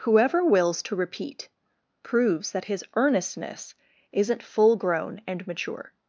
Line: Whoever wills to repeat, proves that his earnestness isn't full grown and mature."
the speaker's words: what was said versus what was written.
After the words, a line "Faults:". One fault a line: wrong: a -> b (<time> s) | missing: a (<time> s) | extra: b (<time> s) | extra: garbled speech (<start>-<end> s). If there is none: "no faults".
Whoever wills to repeat, proves that his earnestness isn't full grown and mature."
Faults:
no faults